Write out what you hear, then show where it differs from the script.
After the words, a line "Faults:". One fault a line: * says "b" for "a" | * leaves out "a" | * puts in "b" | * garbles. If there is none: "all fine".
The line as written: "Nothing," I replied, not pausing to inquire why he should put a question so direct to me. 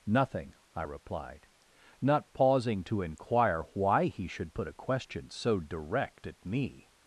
"Nothing," I replied, not pausing to inquire why he should put a question so direct at me.
Faults:
* says "at" for "to"